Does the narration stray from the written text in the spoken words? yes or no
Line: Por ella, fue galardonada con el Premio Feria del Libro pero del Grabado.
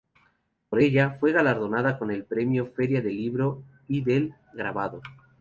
yes